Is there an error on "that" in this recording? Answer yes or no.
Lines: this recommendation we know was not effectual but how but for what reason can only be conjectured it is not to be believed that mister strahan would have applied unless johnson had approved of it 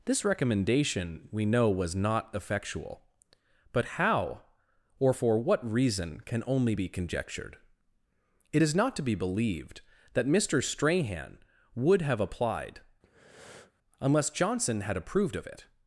no